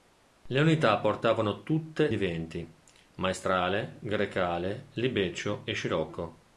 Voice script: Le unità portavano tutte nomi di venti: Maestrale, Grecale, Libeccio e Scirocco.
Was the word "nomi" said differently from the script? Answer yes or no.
yes